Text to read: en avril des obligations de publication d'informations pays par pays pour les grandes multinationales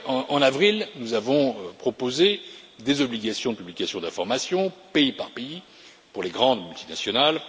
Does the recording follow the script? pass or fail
fail